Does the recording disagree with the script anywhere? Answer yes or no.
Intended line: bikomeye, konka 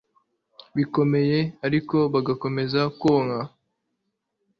yes